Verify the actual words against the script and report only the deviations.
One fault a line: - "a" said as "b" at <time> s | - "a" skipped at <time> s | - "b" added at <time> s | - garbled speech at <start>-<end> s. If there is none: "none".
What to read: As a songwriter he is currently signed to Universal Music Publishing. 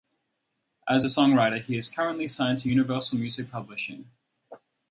none